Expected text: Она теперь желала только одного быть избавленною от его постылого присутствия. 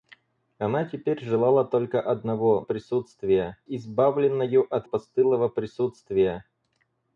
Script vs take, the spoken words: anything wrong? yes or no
yes